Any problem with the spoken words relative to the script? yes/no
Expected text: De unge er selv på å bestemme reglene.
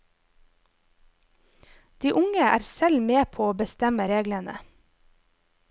yes